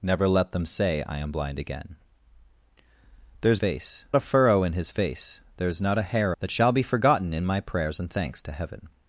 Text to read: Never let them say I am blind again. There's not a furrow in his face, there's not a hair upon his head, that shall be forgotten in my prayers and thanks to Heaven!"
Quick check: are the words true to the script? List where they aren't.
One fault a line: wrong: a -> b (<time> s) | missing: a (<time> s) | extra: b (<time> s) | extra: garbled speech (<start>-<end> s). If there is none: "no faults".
wrong: not -> face (3.6 s)
missing: upon his head (6.3 s)